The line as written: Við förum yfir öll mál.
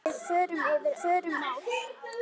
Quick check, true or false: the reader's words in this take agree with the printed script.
false